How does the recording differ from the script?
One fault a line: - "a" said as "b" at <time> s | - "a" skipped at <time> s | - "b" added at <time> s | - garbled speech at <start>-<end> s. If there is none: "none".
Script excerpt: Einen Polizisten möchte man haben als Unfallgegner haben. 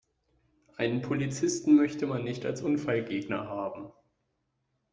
- "haben" said as "nicht" at 2.2 s